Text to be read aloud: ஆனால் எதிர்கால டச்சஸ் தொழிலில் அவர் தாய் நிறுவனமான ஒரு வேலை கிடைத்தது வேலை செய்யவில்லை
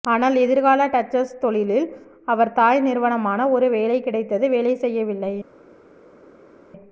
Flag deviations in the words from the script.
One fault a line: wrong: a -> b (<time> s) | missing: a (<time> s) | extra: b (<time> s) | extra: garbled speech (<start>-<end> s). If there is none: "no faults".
no faults